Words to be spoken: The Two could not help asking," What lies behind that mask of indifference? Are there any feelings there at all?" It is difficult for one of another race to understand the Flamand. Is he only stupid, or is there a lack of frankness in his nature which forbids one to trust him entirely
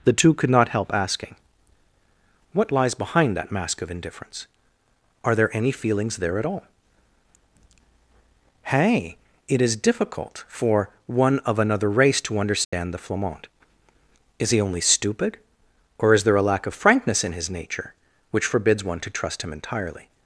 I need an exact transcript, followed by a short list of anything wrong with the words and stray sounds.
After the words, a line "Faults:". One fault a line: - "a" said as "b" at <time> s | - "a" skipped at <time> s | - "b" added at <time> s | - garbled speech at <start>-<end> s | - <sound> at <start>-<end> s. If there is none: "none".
The Two could not help asking," What lies behind that mask of indifference? Are there any feelings there at all?" hey It is difficult for one of another race to understand the Flamand. Is he only stupid, or is there a lack of frankness in his nature which forbids one to trust him entirely
Faults:
- "hey" added at 8.6 s
- dropout at 12.6-12.7 s